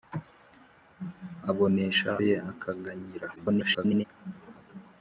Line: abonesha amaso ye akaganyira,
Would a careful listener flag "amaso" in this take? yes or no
yes